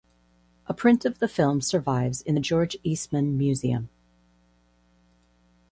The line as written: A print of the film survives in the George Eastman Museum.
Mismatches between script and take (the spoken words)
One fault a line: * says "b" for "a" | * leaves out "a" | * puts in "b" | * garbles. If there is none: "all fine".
all fine